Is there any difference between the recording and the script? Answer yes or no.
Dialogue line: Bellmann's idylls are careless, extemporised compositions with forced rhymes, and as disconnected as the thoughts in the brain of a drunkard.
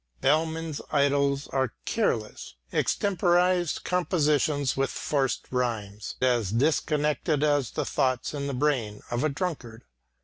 yes